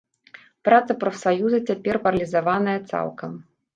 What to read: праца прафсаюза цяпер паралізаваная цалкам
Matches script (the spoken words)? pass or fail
pass